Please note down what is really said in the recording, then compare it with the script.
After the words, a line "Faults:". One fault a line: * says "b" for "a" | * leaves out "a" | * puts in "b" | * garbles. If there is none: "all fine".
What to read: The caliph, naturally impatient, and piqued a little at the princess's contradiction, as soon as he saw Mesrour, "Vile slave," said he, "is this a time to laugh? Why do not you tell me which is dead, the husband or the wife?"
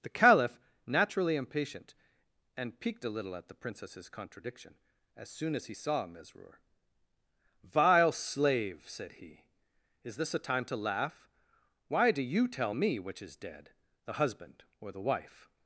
The caliph, naturally impatient, and piqued a little at the princess's contradiction, as soon as he saw Mesrour, "Vile slave," said he, "is this a time to laugh? Why do you tell me which is dead, the husband or the wife?"
Faults:
* leaves out "not"